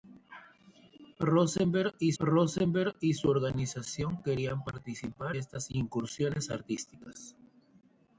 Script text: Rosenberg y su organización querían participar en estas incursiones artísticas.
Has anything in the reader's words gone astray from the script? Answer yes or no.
yes